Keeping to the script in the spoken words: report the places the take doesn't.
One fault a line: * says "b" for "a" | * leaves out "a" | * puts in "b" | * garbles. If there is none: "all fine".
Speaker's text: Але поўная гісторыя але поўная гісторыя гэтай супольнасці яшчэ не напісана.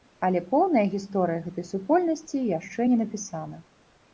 * leaves out "але поўная гісторыя"